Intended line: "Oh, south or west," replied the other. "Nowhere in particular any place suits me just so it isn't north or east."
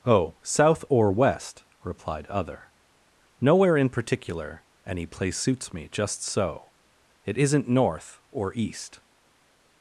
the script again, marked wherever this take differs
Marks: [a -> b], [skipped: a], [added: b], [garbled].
"Oh, south or west," replied [skipped: the] other. "Nowhere in particular any place suits me just so it isn't north or east."